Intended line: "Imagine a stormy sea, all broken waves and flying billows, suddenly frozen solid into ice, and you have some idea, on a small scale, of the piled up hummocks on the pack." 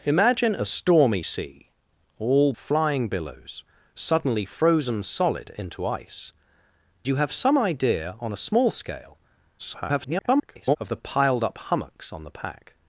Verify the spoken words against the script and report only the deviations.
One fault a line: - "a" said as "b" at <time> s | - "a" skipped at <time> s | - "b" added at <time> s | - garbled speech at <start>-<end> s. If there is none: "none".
- "broken waves and" skipped at 2.5 s
- "and" skipped at 6.3 s
- garbled speech at 9.6-10.8 s